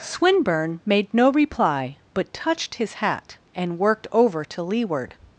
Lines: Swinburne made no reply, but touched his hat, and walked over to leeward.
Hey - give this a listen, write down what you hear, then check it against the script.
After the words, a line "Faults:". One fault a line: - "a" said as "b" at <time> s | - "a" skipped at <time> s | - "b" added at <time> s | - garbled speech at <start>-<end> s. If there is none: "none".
Swinburne made no reply, but touched his hat, and worked over to leeward.
Faults:
- "walked" said as "worked" at 3.8 s